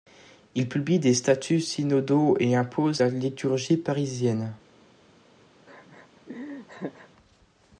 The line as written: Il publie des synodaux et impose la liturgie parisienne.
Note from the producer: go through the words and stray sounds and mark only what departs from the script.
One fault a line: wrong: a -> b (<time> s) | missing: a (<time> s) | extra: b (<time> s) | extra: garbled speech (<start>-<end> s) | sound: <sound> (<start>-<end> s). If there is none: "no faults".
extra: statuts (1.1 s)
sound: laugh (5.7-7.1 s)